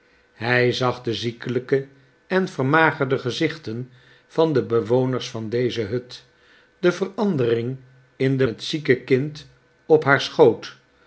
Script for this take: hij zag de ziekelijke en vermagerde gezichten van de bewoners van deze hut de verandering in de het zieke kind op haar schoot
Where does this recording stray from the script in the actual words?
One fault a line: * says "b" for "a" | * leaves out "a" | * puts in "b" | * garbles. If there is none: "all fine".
all fine